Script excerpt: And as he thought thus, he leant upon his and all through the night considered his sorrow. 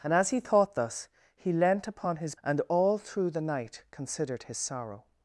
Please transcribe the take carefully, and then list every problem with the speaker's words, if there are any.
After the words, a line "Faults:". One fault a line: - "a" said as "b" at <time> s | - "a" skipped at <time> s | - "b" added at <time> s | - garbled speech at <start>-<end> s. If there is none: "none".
And as he thought thus, he leant upon his and all through the night considered his sorrow.
Faults:
none